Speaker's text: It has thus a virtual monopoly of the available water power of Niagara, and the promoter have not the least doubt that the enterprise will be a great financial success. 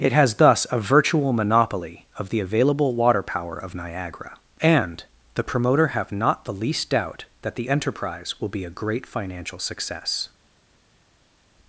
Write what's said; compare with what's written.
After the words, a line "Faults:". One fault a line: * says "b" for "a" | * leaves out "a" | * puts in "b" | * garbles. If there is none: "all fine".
It has thus a virtual monopoly of the available water power of Niagara, and the promoter have not the least doubt that the enterprise will be a great financial success.
Faults:
all fine